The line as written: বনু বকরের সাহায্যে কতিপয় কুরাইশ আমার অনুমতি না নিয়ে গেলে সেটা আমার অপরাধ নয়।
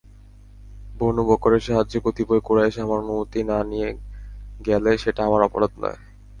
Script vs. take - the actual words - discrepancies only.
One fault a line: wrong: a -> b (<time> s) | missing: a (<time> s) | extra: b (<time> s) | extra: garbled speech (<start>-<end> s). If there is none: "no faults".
no faults